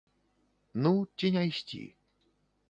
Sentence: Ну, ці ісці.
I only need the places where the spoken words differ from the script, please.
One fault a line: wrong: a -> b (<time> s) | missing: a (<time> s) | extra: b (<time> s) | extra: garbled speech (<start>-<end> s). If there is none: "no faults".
extra: не (1.3 s)